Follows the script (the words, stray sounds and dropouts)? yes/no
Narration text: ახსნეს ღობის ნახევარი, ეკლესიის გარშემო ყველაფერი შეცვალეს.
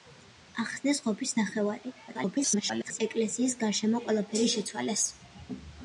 no